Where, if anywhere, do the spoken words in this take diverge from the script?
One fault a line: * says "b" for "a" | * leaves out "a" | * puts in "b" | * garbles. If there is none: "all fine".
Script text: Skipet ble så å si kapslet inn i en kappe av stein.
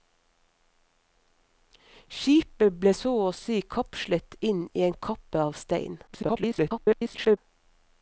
* garbles